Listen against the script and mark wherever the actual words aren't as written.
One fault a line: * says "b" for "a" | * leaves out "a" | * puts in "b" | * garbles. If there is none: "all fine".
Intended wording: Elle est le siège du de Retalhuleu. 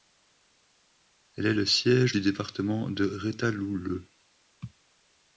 * puts in "département"